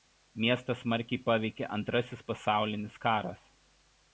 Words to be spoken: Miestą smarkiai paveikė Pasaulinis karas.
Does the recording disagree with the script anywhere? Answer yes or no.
yes